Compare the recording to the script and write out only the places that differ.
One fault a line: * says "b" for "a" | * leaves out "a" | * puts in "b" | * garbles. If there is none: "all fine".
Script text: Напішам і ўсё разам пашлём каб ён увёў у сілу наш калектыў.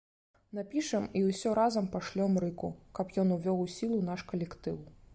* puts in "рыку"